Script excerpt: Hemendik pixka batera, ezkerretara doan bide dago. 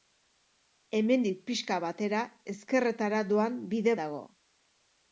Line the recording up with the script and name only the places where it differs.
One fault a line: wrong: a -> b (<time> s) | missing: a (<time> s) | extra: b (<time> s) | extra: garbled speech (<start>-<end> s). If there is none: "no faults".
no faults